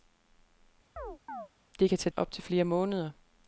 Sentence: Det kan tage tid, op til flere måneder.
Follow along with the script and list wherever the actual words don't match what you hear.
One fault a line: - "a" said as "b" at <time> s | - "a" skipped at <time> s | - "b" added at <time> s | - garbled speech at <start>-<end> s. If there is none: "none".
- "tid" skipped at 2.1 s